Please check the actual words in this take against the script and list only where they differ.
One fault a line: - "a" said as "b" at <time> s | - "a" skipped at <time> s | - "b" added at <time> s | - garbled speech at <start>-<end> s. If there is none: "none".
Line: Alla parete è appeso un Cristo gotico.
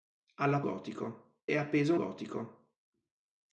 - "parete" said as "gotico" at 0.6 s
- "un Cristo" skipped at 1.9 s